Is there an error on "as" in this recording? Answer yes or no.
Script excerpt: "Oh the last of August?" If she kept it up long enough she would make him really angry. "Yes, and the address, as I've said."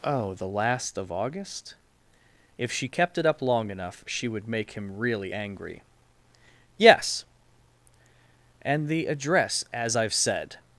no